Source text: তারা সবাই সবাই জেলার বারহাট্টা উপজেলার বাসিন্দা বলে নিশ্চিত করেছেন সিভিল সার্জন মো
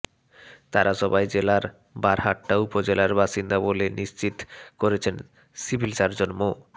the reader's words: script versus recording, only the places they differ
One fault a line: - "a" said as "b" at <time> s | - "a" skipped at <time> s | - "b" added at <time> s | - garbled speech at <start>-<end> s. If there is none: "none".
- "সবাই" skipped at 1.2 s